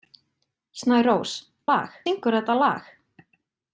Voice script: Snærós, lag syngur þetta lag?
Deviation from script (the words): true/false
false